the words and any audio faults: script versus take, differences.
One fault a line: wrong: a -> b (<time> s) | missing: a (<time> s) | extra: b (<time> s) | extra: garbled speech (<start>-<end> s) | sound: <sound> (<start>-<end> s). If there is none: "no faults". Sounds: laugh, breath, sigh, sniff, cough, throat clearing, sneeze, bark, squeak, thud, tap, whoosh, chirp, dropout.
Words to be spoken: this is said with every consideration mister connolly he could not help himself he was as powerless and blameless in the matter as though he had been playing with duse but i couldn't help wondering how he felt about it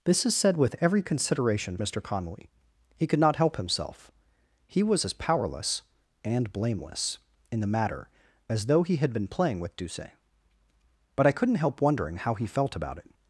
no faults